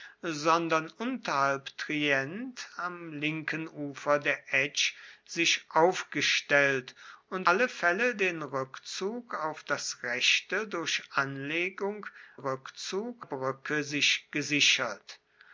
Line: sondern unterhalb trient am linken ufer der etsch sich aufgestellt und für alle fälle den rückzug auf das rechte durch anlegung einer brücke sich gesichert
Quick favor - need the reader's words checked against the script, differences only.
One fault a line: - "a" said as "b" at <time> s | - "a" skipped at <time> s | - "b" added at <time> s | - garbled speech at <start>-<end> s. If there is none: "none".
- "für" skipped at 7.5 s
- "einer" said as "rückzug" at 12.3 s